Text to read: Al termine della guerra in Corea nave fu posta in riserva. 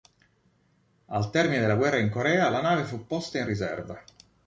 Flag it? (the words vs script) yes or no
yes